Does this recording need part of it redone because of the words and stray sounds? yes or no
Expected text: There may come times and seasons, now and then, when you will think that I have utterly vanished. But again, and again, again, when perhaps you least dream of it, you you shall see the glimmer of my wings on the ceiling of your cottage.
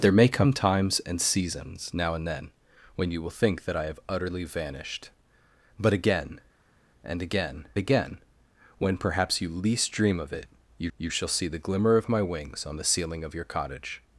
no